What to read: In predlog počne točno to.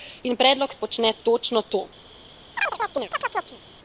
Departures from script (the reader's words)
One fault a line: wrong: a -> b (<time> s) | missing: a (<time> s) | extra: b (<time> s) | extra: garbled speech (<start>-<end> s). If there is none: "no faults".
no faults